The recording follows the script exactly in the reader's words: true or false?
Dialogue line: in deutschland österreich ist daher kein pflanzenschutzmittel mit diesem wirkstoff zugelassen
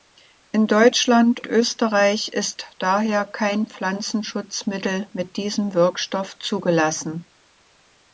true